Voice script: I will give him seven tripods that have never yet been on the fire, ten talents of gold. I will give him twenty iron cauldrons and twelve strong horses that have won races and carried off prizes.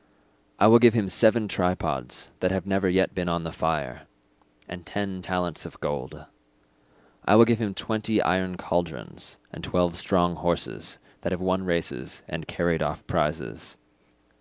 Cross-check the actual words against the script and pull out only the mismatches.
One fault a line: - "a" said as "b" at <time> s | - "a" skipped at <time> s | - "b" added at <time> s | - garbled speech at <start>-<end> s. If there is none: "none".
- "and" added at 4.7 s